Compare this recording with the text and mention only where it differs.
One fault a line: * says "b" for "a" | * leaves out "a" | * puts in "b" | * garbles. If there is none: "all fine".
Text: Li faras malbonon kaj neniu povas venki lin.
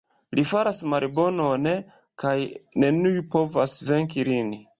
all fine